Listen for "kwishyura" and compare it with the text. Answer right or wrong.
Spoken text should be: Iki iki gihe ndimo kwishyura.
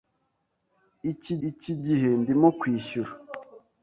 right